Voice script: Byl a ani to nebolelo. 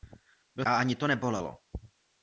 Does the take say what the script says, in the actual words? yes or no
yes